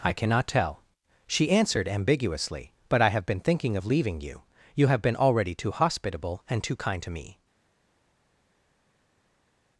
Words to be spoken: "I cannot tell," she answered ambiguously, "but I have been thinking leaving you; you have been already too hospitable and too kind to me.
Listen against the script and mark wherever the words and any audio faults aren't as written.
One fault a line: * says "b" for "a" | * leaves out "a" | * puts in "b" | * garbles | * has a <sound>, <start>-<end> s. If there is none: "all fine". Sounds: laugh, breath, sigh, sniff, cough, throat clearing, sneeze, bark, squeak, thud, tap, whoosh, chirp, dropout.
* puts in "of"